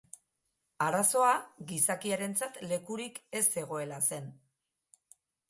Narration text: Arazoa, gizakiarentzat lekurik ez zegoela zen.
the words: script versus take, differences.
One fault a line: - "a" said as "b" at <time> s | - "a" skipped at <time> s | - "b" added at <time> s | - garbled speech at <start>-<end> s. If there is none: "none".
none